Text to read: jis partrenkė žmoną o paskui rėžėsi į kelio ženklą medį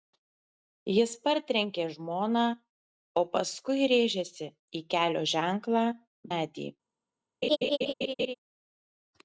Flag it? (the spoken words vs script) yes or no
no